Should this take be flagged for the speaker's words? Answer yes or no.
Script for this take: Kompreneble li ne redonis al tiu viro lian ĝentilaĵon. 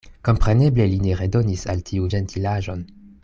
yes